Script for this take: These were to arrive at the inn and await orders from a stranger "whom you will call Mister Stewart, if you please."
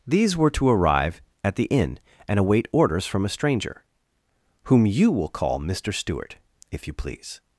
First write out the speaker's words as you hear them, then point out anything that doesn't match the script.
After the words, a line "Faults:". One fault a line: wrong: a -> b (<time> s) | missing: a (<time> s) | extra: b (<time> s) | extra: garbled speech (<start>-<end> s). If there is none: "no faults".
These were to arrive at the inn and await orders from a stranger "whom you will call Mister Stewart, if you please."
Faults:
no faults